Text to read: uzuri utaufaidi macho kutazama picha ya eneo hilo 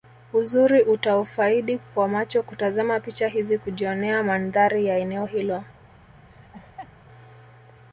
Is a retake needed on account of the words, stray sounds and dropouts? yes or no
yes